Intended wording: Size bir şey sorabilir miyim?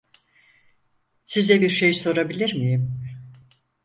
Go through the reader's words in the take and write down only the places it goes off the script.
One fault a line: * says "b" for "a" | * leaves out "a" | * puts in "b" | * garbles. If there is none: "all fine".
all fine